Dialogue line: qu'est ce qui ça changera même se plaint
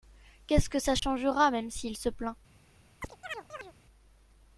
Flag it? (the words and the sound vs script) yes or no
yes